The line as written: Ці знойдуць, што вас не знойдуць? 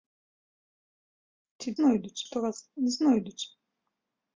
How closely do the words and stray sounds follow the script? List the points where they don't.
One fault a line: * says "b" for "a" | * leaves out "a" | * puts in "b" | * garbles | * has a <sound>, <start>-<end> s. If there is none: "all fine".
all fine